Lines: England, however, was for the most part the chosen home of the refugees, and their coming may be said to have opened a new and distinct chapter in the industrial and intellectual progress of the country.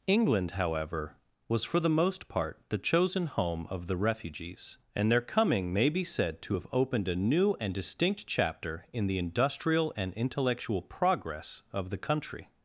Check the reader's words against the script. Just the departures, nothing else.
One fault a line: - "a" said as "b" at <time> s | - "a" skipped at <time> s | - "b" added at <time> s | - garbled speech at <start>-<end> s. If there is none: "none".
none